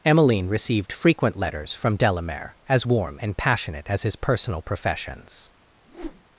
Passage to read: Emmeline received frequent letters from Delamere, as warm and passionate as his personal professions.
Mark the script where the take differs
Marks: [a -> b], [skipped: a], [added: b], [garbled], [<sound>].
Emmeline received frequent letters from Delamere, as warm and passionate as his personal professions. [whoosh]